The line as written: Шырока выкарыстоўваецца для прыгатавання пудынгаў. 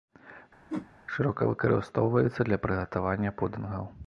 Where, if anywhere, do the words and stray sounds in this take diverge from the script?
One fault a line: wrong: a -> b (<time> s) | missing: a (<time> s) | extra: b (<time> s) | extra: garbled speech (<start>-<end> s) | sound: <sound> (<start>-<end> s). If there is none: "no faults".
sound: whoosh (0.7-0.9 s)